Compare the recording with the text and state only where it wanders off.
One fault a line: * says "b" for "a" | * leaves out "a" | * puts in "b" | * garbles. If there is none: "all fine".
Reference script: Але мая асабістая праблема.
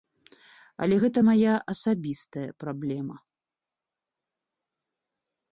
* puts in "гэта"